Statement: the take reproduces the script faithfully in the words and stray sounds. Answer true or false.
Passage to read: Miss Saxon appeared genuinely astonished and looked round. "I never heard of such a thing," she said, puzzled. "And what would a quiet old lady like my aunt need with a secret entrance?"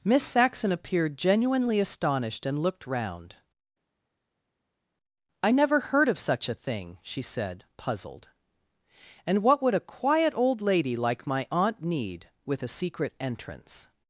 true